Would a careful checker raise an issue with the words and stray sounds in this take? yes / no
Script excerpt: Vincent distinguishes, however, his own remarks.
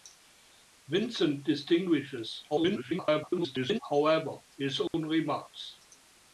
yes